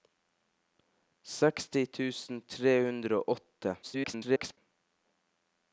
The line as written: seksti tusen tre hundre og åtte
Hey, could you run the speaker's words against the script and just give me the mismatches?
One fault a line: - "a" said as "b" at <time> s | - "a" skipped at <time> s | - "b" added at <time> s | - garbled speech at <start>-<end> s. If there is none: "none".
- garbled speech at 3.8-4.6 s